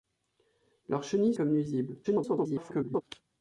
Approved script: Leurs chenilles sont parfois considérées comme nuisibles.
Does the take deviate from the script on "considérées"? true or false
true